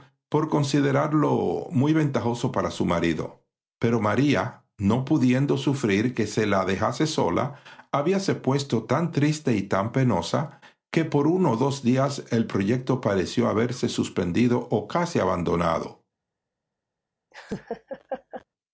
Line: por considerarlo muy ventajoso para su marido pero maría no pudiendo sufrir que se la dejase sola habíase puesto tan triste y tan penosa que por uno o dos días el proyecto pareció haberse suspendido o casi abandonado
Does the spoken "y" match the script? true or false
true